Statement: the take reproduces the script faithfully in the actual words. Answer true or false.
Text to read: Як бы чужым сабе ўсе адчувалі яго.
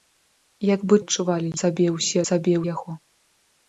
false